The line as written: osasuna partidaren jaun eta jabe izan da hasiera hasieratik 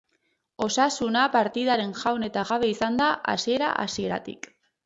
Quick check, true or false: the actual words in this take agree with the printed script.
true